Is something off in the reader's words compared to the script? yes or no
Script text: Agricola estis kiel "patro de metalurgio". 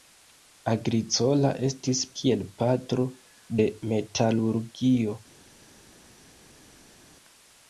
no